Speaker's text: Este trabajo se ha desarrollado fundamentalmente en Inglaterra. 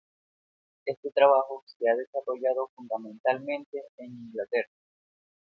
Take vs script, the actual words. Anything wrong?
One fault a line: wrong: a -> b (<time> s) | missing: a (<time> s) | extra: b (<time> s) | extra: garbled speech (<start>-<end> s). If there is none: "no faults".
no faults